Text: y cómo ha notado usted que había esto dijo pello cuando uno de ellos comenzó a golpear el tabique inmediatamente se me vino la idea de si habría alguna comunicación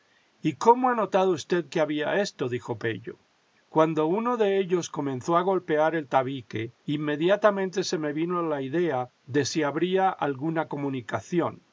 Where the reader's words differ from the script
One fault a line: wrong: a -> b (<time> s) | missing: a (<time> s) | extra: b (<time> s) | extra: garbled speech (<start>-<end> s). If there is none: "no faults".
no faults